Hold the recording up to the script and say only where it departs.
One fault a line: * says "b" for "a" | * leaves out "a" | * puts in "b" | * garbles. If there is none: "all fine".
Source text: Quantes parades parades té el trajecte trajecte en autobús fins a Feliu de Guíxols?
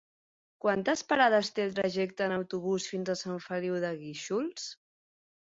* leaves out "parades"
* leaves out "trajecte"
* puts in "Sant"